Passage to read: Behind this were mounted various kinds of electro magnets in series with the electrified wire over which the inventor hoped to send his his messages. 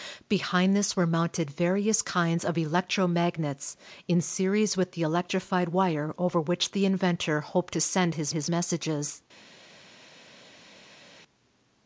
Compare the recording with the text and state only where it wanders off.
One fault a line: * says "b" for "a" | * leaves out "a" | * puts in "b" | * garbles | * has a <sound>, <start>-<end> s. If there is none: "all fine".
all fine